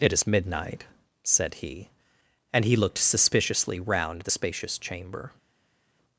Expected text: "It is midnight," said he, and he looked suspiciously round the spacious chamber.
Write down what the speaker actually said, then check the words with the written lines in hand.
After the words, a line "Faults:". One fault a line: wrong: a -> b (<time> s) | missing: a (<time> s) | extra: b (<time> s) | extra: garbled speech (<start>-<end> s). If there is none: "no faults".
"It is midnight," said he, and he looked suspiciously round the spacious chamber.
Faults:
no faults